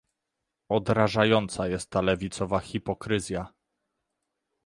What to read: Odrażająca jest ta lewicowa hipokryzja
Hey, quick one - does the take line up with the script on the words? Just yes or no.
yes